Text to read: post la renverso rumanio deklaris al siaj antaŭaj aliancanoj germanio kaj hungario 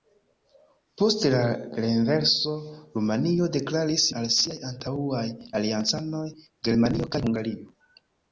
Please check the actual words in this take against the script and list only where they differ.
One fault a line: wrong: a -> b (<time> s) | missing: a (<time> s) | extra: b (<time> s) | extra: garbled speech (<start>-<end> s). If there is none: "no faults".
no faults